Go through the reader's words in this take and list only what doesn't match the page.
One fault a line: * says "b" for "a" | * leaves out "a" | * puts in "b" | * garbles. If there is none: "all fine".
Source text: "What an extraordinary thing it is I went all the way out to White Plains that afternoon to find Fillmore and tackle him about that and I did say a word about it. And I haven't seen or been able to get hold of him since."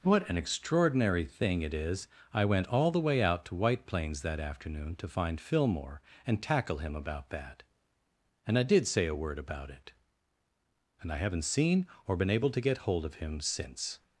all fine